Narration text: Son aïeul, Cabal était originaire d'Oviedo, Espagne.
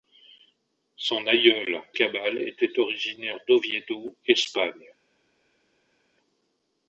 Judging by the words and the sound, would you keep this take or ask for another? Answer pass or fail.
pass